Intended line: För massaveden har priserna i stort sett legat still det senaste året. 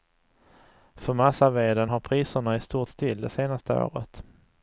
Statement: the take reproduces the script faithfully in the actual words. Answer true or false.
false